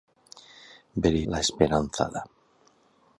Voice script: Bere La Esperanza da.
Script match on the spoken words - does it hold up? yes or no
yes